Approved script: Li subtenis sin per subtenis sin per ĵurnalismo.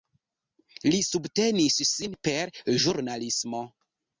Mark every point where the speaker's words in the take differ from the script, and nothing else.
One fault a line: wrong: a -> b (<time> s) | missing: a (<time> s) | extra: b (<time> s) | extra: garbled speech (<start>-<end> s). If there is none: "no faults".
missing: subtenis sin per (2.6 s)